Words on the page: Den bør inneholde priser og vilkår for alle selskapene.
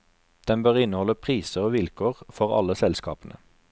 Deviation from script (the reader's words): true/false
false